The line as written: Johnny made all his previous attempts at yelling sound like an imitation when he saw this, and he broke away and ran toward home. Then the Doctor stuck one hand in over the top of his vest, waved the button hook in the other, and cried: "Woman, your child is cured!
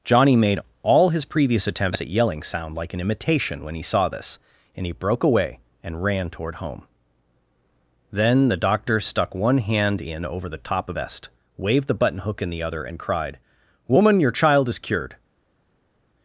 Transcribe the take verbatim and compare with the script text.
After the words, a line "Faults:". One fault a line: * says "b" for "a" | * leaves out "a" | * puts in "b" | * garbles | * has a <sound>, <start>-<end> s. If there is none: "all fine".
Johnny made all his previous attempts at yelling sound like an imitation when he saw this, and he broke away and ran toward home. Then the Doctor stuck one hand in over the top of vest, waved the button hook in the other, and cried: "Woman, your child is cured!
Faults:
* leaves out "his"